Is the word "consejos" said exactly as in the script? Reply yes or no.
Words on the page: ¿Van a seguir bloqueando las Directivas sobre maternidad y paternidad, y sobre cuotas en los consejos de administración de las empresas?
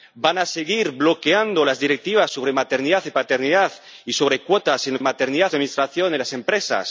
no